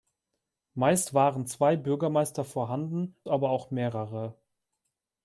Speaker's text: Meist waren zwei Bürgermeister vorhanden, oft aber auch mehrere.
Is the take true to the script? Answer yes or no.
no